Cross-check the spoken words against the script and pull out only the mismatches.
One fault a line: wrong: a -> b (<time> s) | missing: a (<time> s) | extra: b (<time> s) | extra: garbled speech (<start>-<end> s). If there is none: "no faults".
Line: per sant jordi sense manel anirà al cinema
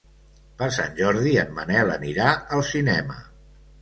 wrong: sense -> en (1.4 s)